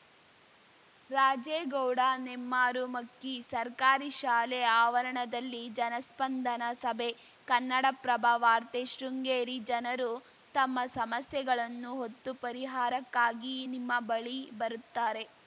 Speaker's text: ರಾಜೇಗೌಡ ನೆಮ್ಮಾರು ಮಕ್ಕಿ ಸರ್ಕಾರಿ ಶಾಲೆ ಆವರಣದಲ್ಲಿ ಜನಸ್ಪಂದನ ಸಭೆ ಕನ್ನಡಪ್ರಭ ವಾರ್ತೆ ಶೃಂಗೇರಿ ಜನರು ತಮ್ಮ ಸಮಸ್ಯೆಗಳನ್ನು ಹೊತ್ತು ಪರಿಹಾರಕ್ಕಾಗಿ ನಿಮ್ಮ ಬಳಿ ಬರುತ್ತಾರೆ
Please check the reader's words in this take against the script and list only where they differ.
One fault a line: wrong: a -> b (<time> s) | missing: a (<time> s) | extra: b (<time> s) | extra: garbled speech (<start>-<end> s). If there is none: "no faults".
no faults